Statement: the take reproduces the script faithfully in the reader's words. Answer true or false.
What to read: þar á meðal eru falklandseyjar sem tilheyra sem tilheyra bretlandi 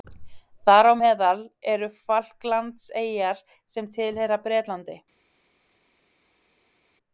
false